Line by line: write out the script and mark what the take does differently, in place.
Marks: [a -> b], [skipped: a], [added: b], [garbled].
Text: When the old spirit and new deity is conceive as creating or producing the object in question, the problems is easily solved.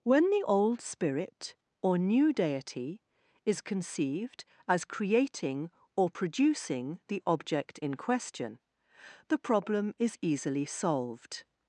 When the old spirit [and -> or] new deity is [conceive -> conceived] as creating or producing the object in question, the [problems -> problem] is easily solved.